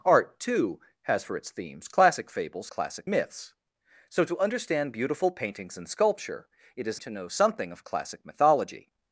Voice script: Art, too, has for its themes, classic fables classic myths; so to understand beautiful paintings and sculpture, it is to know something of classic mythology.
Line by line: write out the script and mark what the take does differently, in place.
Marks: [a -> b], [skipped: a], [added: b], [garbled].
Art, too, has for its themes, classic fables classic myths; so to understand beautiful paintings and sculpture, it is to know something of classic mythology.